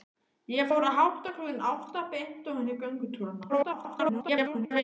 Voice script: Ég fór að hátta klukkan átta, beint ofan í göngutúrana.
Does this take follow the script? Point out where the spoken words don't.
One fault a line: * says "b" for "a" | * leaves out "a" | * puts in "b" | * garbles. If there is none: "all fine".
* garbles